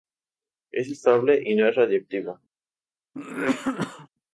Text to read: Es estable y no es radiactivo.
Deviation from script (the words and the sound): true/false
true